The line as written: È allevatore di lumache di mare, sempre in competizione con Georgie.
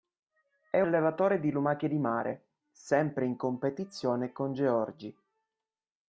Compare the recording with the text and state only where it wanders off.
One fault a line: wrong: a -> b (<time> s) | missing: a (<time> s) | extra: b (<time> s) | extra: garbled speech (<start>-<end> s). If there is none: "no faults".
no faults